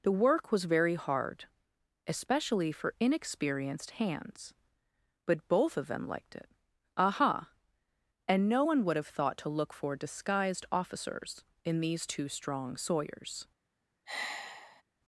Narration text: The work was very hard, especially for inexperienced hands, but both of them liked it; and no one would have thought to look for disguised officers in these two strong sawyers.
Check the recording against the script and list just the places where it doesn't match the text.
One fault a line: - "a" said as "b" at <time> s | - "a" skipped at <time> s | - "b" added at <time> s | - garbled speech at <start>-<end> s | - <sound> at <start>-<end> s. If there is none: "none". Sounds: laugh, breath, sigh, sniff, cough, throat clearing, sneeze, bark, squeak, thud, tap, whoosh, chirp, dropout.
- "aha" added at 7.0 s
- sigh at 14.1-14.8 s